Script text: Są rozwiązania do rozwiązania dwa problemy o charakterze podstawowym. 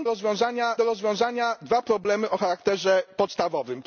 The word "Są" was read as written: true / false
true